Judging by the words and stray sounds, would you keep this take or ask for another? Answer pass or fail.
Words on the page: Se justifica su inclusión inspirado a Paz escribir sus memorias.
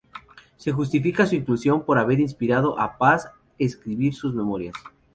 fail